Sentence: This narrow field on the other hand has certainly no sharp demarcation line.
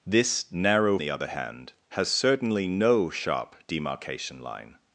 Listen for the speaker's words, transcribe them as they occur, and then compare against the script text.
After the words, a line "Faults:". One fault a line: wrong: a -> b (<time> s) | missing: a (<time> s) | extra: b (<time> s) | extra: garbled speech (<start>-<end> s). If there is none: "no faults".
This narrow the other hand has certainly no sharp demarcation line.
Faults:
missing: field on (1.0 s)